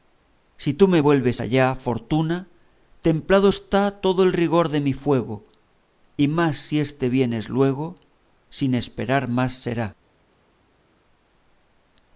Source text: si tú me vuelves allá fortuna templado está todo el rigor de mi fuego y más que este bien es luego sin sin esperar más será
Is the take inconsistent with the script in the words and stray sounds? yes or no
yes